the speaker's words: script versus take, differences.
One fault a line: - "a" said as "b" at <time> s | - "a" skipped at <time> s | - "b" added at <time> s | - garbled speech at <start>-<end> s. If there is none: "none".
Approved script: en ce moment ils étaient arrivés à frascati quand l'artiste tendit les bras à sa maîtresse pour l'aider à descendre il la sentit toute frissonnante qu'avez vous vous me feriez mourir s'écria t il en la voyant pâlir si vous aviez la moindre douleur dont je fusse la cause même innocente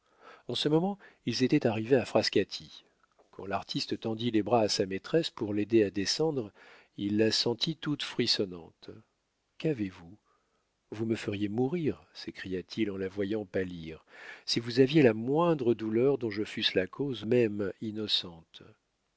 none